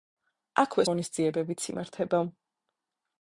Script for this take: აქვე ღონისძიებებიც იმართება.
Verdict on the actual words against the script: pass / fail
pass